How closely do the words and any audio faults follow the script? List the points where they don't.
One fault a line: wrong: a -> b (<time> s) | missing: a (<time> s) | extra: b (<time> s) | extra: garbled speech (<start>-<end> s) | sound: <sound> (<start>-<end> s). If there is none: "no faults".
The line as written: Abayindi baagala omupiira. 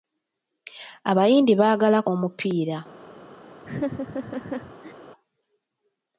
sound: laugh (3.6-4.9 s)